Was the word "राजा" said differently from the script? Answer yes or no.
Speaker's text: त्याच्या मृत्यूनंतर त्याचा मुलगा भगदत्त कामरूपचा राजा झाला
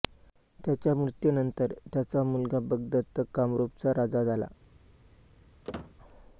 no